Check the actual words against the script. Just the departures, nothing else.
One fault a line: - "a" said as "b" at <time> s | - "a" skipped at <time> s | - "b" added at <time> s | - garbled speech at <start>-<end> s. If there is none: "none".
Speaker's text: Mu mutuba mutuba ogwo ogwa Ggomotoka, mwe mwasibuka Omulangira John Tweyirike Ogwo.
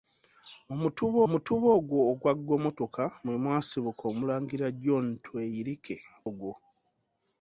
none